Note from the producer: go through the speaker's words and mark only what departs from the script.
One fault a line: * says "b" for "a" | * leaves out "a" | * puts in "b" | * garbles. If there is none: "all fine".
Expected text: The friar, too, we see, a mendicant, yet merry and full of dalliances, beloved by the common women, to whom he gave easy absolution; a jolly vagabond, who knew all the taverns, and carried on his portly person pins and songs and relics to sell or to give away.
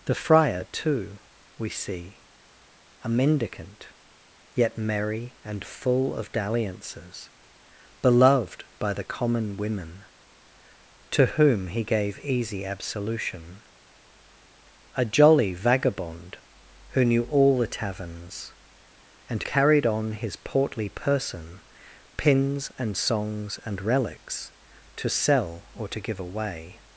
all fine